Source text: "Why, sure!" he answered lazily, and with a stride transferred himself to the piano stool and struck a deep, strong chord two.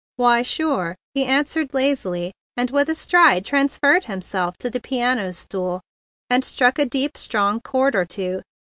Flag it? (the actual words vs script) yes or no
yes